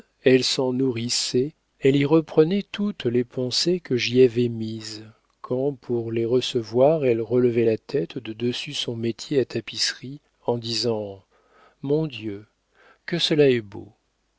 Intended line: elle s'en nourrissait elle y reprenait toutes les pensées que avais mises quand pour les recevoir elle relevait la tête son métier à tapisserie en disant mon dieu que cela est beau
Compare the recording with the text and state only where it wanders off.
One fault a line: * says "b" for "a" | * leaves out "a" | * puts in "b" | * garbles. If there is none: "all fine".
* puts in "j'y"
* puts in "de dessus"